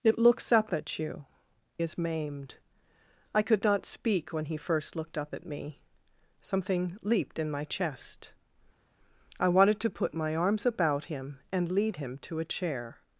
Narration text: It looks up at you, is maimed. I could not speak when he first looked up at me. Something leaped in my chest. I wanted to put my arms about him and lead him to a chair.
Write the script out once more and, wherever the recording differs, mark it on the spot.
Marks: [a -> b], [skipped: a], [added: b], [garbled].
It looks up at you, is maimed. I could not speak when he first looked up at me. Something leaped in my chest. I wanted to put my arms about him and lead him to a chair.